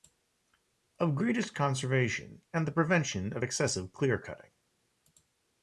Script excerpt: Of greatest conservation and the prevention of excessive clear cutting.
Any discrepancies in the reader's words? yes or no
no